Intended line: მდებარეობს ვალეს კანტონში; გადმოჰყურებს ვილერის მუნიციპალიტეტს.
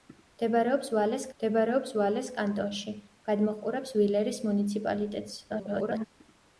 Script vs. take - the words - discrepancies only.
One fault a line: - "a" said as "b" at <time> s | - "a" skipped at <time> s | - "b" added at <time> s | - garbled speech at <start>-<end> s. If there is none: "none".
- "მდებარეობს ვალეს" added at 1.4 s
- garbled speech at 5.5-6.1 s